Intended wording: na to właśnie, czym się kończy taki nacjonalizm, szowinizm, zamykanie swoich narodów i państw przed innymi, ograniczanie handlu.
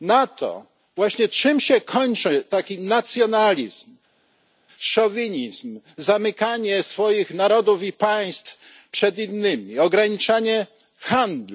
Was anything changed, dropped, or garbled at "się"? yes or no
no